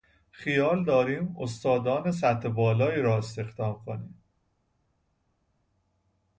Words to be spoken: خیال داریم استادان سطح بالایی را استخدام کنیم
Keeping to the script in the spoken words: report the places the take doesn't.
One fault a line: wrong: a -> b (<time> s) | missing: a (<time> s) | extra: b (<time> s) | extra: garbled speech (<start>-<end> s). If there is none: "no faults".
no faults